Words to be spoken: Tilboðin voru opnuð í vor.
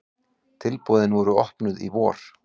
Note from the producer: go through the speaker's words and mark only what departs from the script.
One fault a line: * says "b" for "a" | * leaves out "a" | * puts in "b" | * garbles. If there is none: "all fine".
all fine